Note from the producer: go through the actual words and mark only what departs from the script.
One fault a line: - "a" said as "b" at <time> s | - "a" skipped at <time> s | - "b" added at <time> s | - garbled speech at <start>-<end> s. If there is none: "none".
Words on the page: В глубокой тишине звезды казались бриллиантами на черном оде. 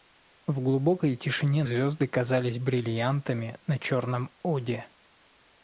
none